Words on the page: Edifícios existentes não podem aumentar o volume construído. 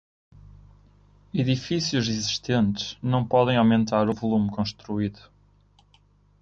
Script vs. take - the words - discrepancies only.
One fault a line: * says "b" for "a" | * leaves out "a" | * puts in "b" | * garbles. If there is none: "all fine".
all fine